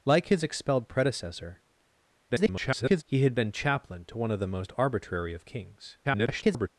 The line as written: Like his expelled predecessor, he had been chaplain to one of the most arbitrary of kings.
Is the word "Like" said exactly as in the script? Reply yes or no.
yes